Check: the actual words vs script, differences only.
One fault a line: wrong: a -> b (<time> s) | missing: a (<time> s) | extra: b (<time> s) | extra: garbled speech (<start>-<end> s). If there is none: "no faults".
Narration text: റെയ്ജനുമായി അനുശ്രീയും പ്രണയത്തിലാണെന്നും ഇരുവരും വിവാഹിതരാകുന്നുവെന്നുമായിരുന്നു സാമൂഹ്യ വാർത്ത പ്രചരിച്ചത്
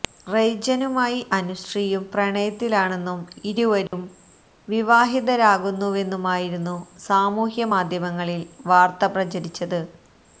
extra: മാധ്യമങ്ങളിൽ (7.7 s)